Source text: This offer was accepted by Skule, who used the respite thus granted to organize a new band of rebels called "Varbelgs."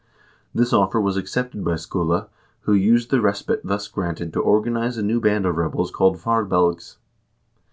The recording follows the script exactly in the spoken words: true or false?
true